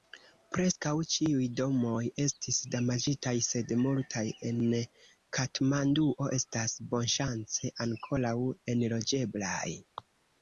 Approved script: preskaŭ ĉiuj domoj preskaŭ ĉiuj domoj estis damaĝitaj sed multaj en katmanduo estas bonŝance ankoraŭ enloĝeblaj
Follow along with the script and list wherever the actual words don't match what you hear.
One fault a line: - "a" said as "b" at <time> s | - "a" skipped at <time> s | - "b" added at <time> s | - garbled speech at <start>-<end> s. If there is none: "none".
- "preskaŭ ĉiuj domoj" skipped at 2.0 s